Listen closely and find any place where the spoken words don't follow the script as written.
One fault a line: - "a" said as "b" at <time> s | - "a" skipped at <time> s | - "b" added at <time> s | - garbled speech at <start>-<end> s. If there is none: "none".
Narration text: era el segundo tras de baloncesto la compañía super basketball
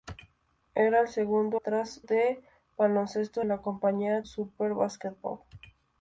none